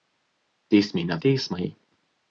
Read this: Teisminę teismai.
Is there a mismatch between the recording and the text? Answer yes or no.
no